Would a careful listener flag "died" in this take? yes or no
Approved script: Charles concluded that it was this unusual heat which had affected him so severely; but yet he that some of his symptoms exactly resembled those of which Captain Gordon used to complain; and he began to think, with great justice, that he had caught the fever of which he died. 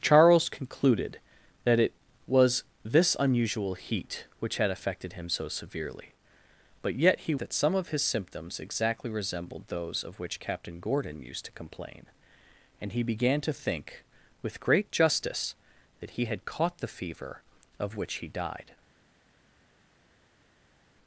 no